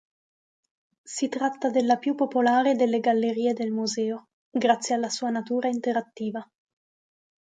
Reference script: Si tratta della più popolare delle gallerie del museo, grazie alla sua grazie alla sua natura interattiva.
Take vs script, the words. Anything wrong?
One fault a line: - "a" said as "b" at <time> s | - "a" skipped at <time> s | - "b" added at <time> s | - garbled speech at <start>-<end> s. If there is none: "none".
- "grazie alla sua" skipped at 5.3 s